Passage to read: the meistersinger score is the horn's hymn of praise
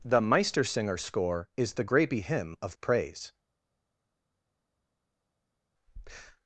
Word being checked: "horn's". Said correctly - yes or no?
no